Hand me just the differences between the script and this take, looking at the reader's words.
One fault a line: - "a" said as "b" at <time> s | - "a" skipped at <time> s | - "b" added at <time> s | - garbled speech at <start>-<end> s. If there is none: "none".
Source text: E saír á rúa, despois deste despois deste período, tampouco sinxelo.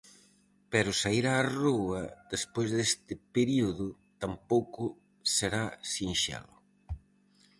- "E" said as "Pero" at 0.7 s
- "despois deste" skipped at 3.1 s
- "será" added at 5.3 s